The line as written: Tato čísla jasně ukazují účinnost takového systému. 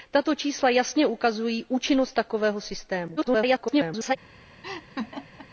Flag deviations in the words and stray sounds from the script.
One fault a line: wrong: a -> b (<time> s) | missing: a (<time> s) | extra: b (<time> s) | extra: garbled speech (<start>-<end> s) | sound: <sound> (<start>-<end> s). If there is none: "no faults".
extra: garbled speech (3.2-4.2 s)
sound: laugh (4.6-5.5 s)